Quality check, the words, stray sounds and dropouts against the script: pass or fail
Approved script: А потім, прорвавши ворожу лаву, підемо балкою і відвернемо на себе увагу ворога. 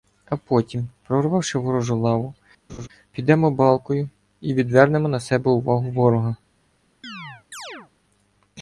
fail